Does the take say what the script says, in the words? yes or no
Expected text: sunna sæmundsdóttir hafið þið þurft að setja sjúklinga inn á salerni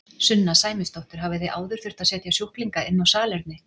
no